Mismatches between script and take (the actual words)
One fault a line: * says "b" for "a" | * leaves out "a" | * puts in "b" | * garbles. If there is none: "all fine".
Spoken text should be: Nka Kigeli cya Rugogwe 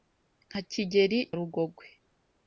* leaves out "cya"